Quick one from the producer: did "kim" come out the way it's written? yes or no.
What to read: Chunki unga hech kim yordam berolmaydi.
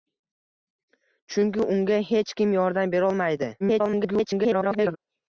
yes